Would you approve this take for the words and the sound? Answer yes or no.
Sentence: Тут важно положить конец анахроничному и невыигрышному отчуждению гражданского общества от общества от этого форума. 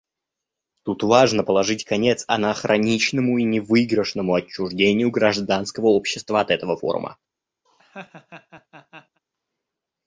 no